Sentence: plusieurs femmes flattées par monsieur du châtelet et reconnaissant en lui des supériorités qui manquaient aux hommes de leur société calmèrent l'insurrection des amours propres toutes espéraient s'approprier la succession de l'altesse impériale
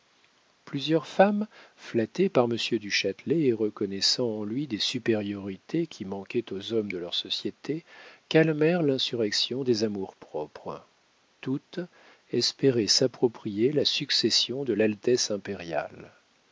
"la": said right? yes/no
yes